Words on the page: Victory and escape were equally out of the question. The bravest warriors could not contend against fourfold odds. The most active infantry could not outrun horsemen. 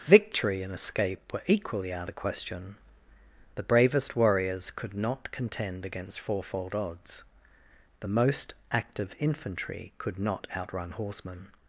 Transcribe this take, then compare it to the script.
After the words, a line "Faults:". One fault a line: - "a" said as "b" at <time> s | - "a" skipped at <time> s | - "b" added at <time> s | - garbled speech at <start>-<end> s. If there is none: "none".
Victory and escape were equally out the question. The bravest warriors could not contend against fourfold odds. The most active infantry could not outrun horsemen.
Faults:
- "of" skipped at 2.1 s